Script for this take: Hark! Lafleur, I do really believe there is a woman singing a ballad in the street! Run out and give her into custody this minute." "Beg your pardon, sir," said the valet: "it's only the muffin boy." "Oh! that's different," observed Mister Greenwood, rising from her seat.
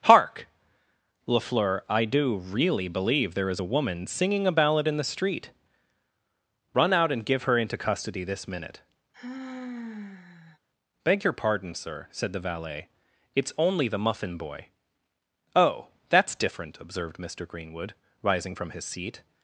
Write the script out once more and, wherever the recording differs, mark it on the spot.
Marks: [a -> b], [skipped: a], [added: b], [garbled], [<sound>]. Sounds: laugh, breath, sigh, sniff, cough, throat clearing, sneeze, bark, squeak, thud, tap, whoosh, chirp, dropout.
Hark! Lafleur, I do really believe there is a woman singing a ballad in the street! Run out and give her into custody this minute." [sigh] "Beg your pardon, sir," said the valet: "it's only the muffin boy." "Oh! that's different," observed Mister Greenwood, rising from [her -> his] seat.